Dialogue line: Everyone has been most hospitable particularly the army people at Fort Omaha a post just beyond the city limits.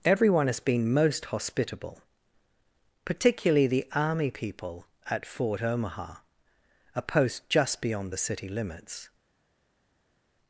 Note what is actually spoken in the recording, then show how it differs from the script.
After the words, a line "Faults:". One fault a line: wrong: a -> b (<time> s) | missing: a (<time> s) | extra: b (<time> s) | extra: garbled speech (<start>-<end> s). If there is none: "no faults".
Everyone has been most hospitable particularly the army people at Fort Omaha a post just beyond the city limits.
Faults:
no faults